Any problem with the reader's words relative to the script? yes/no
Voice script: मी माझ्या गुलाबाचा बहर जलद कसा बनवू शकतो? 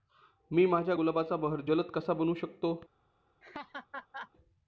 no